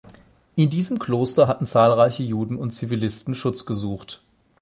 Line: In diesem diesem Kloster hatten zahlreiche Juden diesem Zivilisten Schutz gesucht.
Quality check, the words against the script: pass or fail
fail